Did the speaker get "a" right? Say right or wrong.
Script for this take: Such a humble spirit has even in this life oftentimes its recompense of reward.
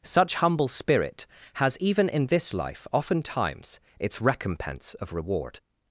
wrong